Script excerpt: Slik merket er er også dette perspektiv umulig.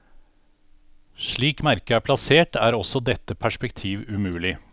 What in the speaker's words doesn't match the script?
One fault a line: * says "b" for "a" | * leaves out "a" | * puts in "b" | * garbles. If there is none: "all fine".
* puts in "plassert"